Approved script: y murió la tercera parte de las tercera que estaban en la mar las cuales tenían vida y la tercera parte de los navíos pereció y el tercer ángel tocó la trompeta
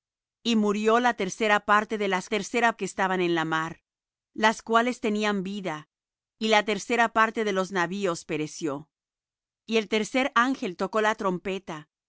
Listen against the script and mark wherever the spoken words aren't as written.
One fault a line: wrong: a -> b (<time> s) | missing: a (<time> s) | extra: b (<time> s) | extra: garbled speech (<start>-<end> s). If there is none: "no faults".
no faults